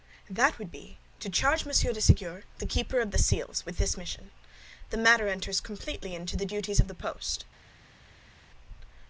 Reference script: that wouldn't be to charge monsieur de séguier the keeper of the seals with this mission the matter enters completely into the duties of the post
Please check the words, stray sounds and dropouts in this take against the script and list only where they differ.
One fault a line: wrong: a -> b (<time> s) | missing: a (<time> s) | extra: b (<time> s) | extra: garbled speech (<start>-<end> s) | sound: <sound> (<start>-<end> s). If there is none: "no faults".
wrong: wouldn't -> would (0.6 s)